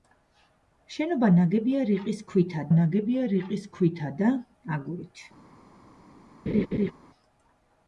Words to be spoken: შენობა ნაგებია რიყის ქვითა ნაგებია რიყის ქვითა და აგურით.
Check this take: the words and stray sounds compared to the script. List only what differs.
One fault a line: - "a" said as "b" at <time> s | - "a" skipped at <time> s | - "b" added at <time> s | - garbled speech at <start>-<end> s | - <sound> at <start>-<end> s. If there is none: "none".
- laugh at 6.5-6.9 s